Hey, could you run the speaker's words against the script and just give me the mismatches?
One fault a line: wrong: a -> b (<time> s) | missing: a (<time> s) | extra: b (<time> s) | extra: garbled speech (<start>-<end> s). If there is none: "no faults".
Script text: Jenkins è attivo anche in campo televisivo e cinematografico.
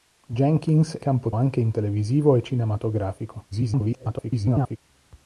wrong: attivo -> campo (1.0 s)
missing: campo (1.7 s)
extra: garbled speech (3.5-4.8 s)